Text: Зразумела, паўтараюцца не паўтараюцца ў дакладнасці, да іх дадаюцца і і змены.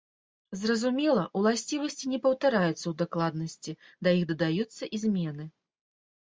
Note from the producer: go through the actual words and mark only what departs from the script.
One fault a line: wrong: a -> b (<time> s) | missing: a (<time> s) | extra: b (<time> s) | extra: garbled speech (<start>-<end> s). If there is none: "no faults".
wrong: паўтараюцца -> уласцівасці (1.4 s)
missing: і (5.1 s)